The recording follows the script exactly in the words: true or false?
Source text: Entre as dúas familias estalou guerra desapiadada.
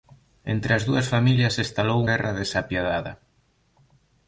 true